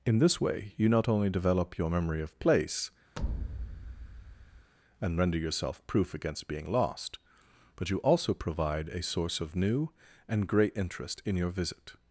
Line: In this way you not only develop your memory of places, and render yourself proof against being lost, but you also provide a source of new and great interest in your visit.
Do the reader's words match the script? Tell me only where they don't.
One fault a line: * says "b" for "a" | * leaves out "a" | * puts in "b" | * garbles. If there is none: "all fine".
* says "place" for "places"